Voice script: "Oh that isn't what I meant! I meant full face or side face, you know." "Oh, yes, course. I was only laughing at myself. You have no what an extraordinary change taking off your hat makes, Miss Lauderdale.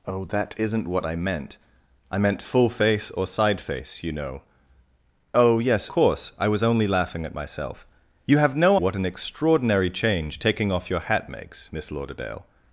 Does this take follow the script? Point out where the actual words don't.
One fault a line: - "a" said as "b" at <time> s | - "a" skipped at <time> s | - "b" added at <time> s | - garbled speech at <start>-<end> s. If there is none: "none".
none